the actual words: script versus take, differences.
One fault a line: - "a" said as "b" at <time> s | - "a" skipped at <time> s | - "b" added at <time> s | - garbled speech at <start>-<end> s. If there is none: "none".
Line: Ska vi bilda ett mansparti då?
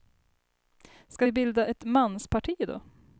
none